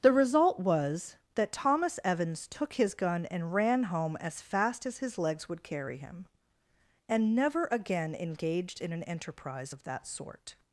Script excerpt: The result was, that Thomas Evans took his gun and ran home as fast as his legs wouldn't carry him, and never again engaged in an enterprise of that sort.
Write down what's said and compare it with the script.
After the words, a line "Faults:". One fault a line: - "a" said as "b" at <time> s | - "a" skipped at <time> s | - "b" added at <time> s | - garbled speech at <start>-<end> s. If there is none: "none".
The result was, that Thomas Evans took his gun and ran home as fast as his legs would carry him, and never again engaged in an enterprise of that sort.
Faults:
- "wouldn't" said as "would" at 5.5 s